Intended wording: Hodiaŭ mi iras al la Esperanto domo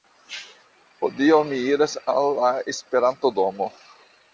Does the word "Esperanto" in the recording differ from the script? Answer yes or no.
no